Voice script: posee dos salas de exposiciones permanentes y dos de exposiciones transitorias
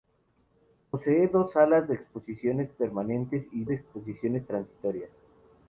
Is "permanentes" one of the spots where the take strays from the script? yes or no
no